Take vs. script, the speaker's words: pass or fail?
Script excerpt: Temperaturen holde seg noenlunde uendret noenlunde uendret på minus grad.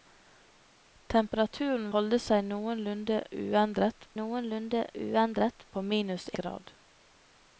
pass